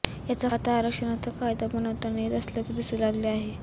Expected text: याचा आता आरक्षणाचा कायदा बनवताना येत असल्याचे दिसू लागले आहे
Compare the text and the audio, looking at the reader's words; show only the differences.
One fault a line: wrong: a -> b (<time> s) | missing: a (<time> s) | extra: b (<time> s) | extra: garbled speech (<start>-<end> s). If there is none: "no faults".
no faults